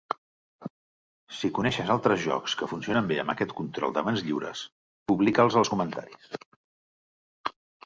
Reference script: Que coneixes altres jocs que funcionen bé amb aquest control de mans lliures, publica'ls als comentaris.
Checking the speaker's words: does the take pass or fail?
fail